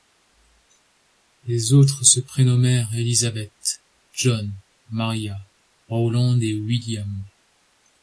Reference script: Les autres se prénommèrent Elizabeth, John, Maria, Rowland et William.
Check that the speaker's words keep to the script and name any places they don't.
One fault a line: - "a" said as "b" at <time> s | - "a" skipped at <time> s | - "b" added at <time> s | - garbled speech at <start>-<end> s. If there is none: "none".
none